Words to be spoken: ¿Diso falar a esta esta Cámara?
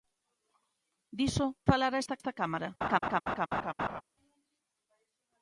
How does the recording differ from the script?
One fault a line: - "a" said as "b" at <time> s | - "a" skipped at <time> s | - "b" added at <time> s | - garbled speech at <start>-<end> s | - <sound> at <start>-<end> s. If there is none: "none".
- laugh at 2.8-4.0 s